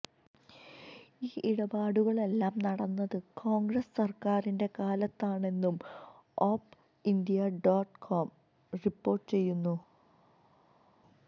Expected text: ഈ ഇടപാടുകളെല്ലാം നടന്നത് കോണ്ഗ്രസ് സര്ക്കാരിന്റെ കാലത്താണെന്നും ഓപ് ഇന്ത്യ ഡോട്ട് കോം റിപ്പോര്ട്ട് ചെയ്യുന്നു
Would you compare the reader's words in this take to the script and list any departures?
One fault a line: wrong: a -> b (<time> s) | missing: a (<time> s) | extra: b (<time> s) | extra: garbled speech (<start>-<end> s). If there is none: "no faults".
no faults